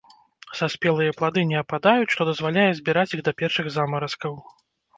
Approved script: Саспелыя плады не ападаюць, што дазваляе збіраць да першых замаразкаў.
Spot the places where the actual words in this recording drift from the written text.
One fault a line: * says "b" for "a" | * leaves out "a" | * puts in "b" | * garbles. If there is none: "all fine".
* puts in "іх"